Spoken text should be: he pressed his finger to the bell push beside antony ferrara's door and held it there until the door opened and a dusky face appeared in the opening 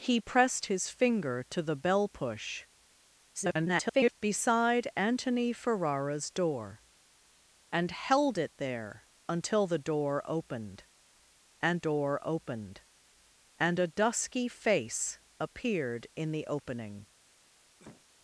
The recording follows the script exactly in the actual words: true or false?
false